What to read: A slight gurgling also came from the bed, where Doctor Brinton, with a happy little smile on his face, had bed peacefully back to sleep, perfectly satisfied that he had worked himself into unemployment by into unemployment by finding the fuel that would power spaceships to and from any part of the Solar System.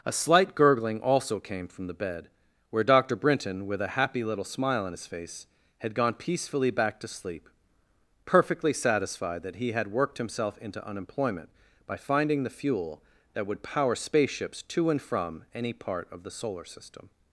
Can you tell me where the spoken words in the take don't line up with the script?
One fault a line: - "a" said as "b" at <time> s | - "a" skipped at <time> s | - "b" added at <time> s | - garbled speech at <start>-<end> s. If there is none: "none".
- "bed" said as "gone" at 5.9 s
- "into unemployment by" skipped at 12.0 s